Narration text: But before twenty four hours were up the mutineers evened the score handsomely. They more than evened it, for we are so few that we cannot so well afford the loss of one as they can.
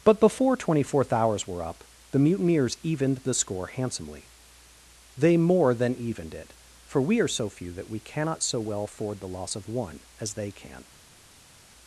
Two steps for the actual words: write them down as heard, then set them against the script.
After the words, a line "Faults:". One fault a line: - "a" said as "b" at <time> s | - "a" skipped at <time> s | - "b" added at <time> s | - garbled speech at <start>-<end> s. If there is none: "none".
But before twenty fourth hours were up the mutineers evened the score handsomely. They more than evened it, for we are so few that we cannot so well afford the loss of one as they can.
Faults:
- "four" said as "fourth" at 0.8 s